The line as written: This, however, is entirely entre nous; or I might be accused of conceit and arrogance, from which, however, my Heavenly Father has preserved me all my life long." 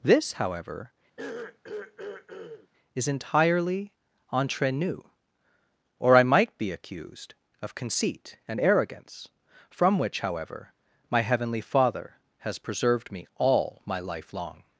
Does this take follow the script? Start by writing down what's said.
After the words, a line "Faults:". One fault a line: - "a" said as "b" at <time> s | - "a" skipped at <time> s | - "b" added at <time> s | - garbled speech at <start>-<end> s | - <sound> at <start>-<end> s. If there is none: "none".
This, however, is entirely entre nous; or I might be accused of conceit and arrogance, from which, however, my Heavenly Father has preserved me all my life long."
Faults:
- throat clearing at 1.2-2.7 s